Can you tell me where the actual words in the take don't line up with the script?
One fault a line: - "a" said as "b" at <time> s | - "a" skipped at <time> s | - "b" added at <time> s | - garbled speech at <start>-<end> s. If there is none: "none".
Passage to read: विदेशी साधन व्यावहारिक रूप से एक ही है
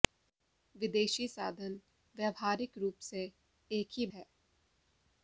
none